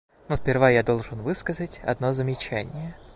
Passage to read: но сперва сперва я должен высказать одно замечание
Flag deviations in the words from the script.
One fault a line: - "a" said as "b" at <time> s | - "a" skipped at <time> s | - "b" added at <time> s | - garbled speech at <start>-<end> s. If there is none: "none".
- "сперва" skipped at 0.7 s